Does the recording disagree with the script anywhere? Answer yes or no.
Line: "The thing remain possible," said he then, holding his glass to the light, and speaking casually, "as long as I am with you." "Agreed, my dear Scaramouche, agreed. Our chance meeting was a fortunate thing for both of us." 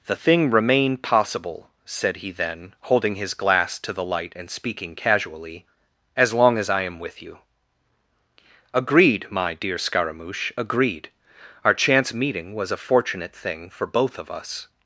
no